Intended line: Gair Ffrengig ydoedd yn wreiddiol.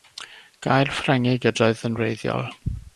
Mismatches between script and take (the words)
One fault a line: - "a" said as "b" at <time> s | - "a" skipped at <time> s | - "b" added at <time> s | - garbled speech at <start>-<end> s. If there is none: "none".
none